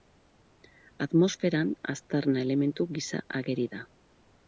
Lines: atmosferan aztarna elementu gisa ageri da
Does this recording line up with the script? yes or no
yes